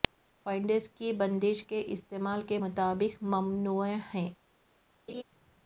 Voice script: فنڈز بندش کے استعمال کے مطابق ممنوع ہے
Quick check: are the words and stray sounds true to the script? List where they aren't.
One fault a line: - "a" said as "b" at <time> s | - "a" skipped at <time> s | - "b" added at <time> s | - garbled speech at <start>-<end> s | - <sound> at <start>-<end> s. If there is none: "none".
- "کی" added at 0.9 s
- laugh at 5.1-5.2 s